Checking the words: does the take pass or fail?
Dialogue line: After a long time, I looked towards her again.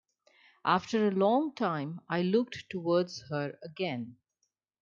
pass